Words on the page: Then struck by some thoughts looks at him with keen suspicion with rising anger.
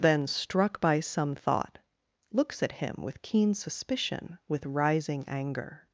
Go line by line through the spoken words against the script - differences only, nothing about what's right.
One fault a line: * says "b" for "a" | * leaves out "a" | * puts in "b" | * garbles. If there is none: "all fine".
* says "thought" for "thoughts"